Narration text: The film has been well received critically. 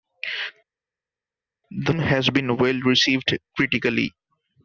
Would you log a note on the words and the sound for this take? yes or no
yes